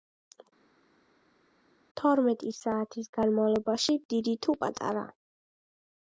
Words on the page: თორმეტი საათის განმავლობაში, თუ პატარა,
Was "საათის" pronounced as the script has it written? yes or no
yes